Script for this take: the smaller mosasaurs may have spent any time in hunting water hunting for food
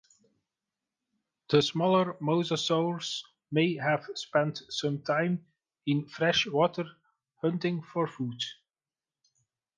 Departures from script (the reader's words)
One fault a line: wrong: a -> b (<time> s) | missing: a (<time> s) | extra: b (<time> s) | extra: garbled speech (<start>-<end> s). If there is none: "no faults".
wrong: any -> some (4.7 s)
wrong: hunting -> fresh (6.1 s)